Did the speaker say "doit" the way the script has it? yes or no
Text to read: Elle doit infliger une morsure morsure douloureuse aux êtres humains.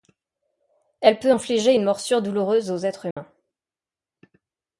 no